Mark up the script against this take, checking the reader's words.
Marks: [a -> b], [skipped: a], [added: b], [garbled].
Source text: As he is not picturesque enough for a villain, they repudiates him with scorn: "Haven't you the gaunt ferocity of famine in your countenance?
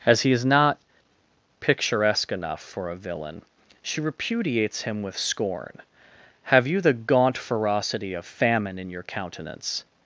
As he is not picturesque enough for a villain, [they -> she] repudiates him with scorn: ["Haven't -> Have] you the gaunt ferocity of famine in your countenance?